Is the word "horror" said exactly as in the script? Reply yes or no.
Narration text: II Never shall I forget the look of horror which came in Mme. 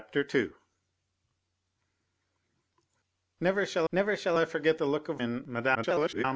no